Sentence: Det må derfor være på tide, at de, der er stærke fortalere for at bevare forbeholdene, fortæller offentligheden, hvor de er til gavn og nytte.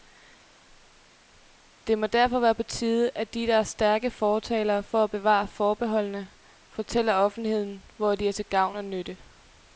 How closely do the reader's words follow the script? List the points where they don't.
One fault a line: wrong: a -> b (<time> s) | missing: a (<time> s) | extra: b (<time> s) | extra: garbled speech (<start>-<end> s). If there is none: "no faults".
no faults